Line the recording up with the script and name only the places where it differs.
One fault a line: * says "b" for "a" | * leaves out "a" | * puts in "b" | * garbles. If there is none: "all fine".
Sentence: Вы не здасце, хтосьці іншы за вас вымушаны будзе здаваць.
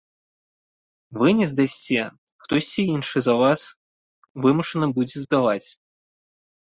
all fine